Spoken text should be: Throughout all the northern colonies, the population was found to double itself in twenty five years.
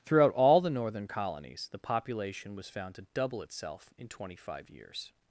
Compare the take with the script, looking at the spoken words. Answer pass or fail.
pass